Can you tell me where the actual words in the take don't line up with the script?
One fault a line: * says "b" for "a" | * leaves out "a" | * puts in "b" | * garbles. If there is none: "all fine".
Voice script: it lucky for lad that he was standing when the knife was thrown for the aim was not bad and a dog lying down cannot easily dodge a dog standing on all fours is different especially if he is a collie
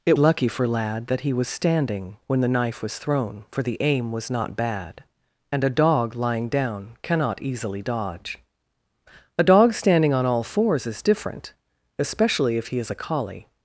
all fine